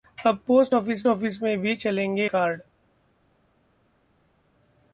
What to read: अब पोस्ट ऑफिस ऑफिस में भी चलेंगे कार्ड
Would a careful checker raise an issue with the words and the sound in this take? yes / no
no